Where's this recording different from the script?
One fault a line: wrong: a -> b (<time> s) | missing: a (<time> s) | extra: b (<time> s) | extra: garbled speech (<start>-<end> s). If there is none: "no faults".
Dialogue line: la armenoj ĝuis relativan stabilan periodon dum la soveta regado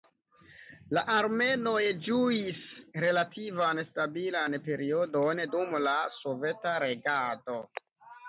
no faults